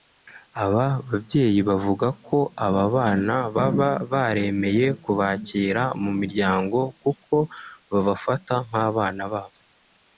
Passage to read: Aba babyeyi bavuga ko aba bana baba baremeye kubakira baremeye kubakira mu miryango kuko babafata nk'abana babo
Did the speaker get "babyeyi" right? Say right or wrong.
right